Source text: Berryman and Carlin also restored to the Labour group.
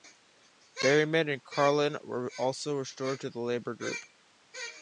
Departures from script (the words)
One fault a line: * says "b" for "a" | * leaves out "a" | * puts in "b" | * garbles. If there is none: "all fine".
* puts in "were"